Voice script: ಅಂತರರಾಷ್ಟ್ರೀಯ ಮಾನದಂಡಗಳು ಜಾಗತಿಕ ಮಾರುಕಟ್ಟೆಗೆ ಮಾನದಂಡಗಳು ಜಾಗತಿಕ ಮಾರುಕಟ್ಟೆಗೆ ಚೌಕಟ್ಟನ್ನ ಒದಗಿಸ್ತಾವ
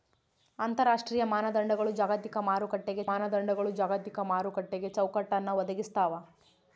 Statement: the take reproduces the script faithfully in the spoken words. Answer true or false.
true